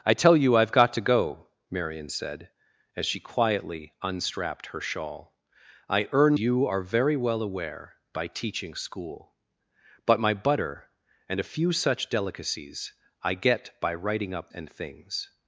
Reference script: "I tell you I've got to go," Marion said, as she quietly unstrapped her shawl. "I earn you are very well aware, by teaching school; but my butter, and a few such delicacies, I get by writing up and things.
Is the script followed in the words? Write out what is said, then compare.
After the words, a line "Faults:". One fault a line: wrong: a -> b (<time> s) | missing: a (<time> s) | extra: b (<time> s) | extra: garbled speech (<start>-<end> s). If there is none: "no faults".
"I tell you I've got to go," Marion said, as she quietly unstrapped her shawl. "I earn you are very well aware, by teaching school; but my butter, and a few such delicacies, I get by writing up and things.
Faults:
no faults